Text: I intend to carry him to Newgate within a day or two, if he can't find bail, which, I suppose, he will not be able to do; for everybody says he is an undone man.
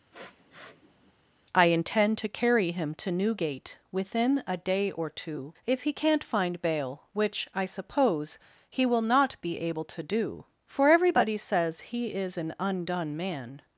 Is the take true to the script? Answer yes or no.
yes